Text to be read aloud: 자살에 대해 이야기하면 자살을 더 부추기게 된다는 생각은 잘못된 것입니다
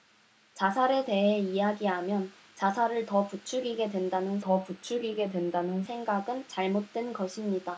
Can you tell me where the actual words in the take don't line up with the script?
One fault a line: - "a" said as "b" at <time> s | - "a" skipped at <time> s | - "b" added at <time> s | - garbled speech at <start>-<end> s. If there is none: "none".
- "더 부추기게 된다는" added at 4.4 s